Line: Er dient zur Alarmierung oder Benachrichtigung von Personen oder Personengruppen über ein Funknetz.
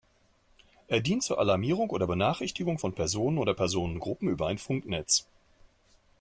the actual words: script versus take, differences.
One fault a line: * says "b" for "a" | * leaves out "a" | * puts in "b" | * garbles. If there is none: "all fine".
all fine